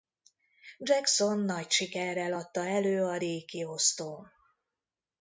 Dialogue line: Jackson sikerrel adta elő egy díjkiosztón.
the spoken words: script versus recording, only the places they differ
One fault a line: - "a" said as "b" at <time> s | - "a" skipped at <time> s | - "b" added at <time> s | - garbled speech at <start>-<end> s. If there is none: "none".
- "nagy" added at 1.4 s
- "egy" said as "a" at 3.0 s